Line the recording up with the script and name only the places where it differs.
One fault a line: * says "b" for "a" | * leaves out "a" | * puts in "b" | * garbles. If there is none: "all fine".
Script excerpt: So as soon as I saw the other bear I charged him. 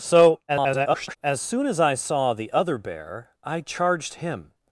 * garbles